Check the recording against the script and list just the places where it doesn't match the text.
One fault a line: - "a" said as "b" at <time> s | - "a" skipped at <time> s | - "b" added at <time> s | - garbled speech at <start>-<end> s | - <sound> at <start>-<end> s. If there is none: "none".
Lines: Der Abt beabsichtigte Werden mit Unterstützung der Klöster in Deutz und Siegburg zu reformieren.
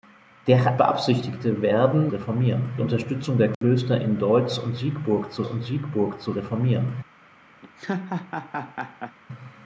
- "Abt" skipped at 0.8 s
- "mit" said as "reformieren" at 2.1 s
- dropout at 3.5-3.6 s
- "und Siegburg zu" added at 5.4 s
- laugh at 7.6-9.2 s